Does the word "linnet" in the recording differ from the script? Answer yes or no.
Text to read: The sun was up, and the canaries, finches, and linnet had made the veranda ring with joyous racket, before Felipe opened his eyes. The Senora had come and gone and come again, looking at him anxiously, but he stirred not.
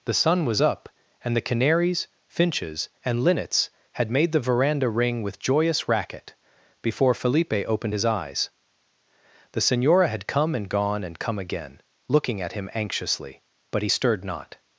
yes